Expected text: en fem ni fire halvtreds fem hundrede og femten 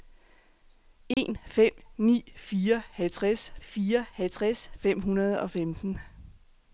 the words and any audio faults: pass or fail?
fail